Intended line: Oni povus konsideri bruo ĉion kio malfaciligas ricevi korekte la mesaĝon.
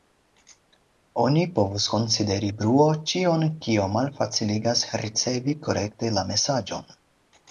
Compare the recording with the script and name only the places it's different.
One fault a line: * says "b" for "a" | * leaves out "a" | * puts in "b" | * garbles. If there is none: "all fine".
all fine